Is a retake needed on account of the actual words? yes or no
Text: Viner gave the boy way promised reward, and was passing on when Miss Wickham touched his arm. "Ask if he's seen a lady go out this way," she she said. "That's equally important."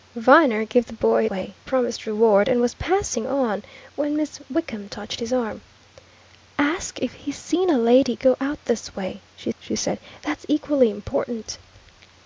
no